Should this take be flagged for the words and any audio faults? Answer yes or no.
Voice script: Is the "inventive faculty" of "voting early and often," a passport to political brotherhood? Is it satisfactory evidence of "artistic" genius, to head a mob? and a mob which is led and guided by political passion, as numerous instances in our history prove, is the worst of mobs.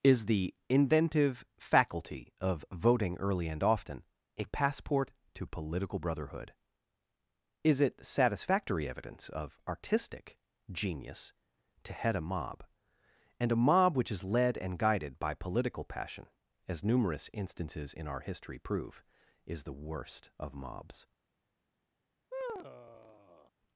yes